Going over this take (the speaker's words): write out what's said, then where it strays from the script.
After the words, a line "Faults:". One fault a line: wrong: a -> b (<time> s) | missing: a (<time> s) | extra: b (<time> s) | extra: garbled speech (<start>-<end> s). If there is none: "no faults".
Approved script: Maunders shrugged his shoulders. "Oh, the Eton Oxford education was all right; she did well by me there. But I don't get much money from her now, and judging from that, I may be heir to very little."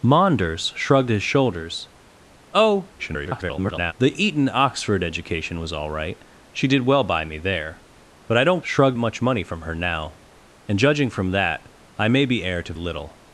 Maunders shrugged his shoulders. "Oh, [garbled] the Eton Oxford education was all right; she did well by me there. But I don't shrugged much money from her now, and judging from that, I may be heir to little."
Faults:
extra: garbled speech (3.0-3.9 s)
wrong: get -> shrugged (8.6 s)
missing: very (12.7 s)